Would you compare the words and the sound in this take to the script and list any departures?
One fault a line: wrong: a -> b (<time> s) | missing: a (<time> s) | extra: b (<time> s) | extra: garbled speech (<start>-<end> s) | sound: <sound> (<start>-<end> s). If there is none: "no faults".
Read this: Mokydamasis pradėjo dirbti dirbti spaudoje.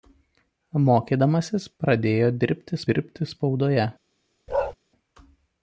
sound: bark (4.5-4.7 s)